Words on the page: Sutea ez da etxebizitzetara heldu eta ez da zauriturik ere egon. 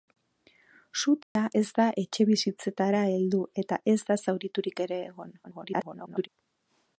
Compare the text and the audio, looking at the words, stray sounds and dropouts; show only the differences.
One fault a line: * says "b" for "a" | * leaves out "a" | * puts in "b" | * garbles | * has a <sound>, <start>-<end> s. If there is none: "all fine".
* has a dropout, 1.2-1.4 s
* garbles